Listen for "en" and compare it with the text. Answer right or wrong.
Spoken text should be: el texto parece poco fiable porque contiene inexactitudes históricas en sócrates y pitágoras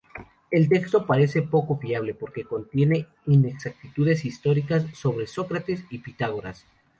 wrong